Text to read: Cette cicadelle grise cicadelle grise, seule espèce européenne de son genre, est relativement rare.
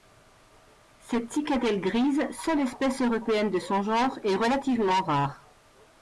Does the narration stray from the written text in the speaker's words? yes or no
yes